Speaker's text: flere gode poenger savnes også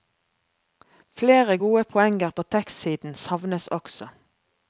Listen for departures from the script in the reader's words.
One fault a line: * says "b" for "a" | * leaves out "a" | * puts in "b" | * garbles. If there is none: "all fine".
* puts in "på tekstsiden"